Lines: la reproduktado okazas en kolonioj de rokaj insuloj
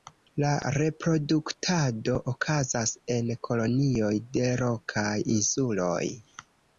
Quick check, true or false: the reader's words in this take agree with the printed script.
true